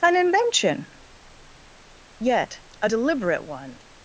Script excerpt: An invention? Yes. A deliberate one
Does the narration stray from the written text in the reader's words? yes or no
yes